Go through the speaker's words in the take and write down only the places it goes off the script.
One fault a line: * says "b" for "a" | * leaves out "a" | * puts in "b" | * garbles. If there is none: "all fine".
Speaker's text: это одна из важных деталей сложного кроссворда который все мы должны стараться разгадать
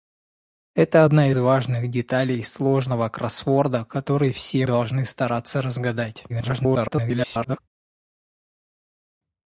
* leaves out "из"
* leaves out "мы"
* garbles